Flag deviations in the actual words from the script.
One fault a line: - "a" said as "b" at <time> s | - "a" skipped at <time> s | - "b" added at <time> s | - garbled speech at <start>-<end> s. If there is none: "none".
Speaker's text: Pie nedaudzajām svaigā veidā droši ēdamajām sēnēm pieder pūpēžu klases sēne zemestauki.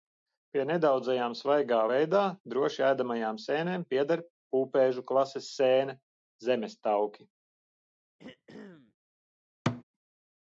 none